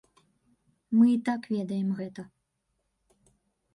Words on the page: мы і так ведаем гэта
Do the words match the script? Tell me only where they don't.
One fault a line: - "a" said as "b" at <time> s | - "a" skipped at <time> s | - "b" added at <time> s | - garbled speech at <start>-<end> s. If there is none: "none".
none